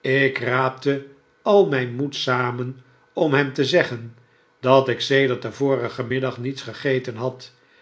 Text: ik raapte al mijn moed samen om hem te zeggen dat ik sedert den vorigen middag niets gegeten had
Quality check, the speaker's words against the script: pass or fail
pass